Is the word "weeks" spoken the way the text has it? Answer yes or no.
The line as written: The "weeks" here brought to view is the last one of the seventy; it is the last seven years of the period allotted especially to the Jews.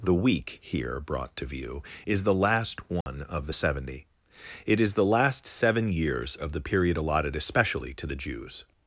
no